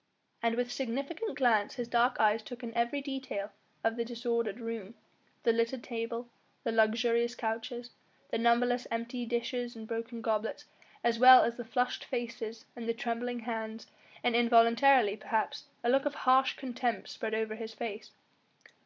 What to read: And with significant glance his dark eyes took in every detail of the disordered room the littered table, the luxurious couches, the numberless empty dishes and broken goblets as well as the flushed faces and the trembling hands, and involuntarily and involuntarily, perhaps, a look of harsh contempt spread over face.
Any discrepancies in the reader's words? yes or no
yes